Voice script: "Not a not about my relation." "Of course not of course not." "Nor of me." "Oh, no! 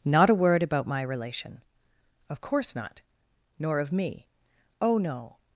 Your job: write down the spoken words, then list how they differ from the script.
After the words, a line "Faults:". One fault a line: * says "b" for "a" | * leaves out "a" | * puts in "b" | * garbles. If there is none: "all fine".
"Not a word about my relation." "Of course not." "Nor of me." "Oh, no!
Faults:
* says "word" for "not"
* leaves out "of course not"